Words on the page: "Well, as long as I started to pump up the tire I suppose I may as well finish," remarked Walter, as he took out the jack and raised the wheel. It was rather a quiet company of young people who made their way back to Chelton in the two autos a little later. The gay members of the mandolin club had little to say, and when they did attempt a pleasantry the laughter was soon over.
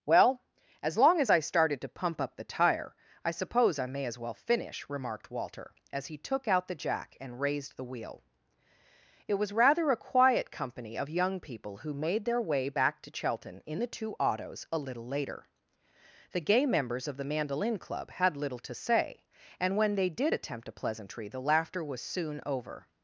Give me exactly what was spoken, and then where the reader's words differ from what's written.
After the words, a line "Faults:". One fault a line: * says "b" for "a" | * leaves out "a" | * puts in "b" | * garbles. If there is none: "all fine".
"Well, as long as I started to pump up the tire I suppose I may as well finish," remarked Walter, as he took out the jack and raised the wheel. It was rather a quiet company of young people who made their way back to Chelton in the two autos a little later. The gay members of the mandolin club had little to say, and when they did attempt a pleasantry the laughter was soon over.
Faults:
all fine